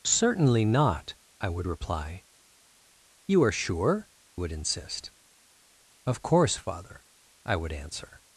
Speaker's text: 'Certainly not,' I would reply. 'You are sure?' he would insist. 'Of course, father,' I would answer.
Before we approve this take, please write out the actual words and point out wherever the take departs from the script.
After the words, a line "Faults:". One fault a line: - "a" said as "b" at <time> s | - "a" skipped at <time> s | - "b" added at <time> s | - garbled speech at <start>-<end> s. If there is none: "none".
'Certainly not,' I would reply. 'You are sure?' would insist. 'Of course, father,' I would answer.
Faults:
- "he" skipped at 4.1 s